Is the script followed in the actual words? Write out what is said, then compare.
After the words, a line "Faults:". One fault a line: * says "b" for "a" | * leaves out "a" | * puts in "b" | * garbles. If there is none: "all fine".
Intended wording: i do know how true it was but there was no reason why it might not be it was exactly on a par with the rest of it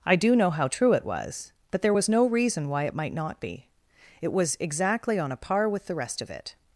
i do know how true it was but there was no reason why it might not be it was exactly on a par with the rest of it
Faults:
all fine